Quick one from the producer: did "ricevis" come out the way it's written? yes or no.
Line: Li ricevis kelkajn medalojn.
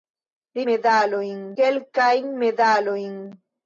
no